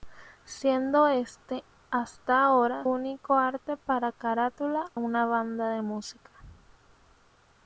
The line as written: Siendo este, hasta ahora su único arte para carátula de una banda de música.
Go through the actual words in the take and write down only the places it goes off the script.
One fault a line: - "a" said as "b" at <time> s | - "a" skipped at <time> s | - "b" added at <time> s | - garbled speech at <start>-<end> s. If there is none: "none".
- "su" skipped at 2.9 s
- "de" skipped at 4.9 s